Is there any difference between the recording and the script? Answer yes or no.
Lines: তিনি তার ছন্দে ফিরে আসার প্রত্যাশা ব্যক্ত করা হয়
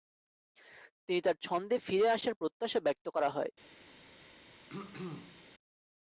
no